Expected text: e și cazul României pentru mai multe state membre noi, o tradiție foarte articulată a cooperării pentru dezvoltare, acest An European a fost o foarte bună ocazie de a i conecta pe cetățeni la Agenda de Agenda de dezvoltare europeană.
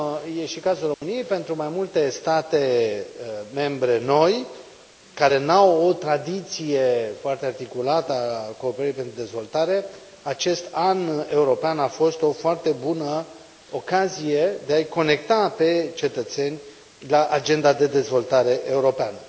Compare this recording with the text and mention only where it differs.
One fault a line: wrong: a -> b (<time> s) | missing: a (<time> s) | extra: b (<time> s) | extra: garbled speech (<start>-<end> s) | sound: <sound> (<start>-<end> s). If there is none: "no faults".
sound: dropout (0.9-1.0 s)
extra: care nu au (5.1 s)
missing: Agenda de (17.9 s)